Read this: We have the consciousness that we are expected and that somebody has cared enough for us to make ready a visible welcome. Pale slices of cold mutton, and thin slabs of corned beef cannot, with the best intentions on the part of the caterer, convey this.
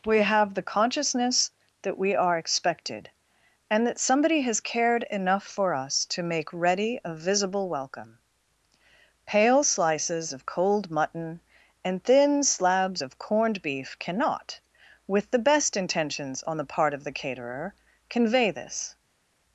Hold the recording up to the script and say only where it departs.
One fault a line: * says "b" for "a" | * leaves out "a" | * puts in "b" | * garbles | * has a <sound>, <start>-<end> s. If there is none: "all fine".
all fine